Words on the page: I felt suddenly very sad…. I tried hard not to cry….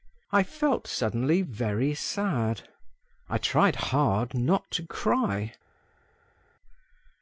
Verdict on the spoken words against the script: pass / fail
pass